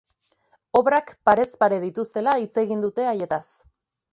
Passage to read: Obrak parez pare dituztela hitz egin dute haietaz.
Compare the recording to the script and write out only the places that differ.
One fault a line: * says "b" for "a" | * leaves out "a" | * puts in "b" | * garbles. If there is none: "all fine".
all fine